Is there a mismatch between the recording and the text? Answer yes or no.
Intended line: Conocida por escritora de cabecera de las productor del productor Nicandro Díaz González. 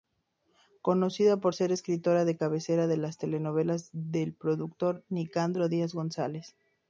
yes